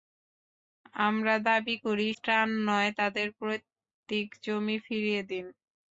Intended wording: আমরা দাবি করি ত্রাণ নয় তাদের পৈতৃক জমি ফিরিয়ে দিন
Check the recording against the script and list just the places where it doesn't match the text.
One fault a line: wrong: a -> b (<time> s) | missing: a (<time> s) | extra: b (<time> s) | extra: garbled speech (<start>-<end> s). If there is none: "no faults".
no faults